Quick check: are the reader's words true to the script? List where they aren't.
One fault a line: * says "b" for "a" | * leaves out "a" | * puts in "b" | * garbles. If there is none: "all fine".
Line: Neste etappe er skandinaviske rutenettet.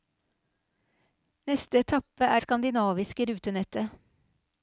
all fine